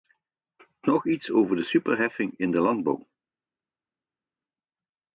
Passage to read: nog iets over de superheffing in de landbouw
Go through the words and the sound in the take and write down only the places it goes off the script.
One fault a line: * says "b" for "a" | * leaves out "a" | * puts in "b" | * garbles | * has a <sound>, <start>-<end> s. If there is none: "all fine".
all fine